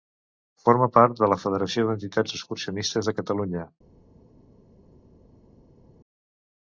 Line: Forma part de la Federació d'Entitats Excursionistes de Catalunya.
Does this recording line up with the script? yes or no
yes